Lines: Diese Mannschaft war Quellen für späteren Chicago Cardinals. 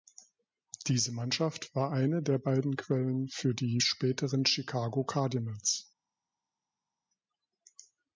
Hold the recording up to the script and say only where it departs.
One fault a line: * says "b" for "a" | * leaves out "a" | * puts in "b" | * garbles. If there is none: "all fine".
* puts in "eine der beiden"
* puts in "die"